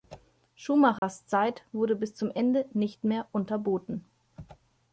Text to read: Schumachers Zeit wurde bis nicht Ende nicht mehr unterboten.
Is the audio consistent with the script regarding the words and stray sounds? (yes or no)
no